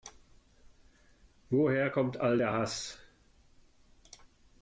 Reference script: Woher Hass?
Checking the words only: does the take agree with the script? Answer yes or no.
no